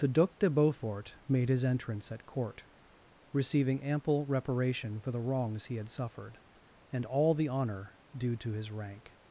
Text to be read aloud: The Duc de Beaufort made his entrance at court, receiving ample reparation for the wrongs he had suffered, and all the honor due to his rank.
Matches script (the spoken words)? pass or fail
pass